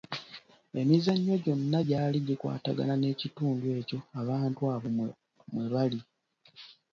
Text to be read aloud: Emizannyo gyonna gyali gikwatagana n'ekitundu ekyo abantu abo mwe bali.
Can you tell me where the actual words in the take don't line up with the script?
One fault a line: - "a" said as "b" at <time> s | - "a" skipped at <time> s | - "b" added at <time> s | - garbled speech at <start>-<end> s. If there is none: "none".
none